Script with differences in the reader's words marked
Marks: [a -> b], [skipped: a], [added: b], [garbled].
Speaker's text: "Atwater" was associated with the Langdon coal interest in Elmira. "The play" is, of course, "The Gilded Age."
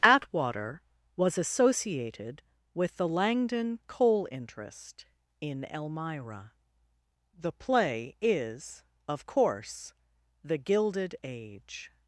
"Atwater" was associated with the Langdon coal interest in Elmira. "The play" is, of course, "The Gilded Age."